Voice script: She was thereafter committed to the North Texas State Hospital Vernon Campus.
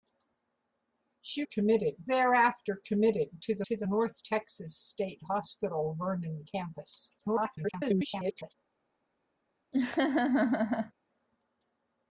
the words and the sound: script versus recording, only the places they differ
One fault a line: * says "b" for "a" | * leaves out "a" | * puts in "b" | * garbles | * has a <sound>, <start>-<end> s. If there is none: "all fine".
* says "committed" for "was"
* puts in "to the"
* garbles
* has a laugh, 9.7-10.9 s